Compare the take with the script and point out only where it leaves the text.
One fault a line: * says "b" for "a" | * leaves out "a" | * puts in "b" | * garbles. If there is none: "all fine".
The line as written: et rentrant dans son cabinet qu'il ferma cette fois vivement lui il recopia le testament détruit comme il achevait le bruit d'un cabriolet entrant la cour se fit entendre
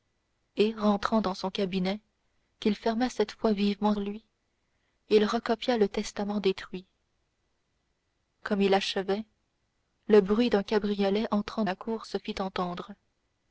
all fine